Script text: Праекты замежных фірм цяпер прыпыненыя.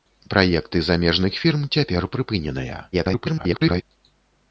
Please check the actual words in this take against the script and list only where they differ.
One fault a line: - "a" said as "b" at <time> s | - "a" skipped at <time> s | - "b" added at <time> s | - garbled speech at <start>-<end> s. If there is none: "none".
- garbled speech at 2.9-3.8 s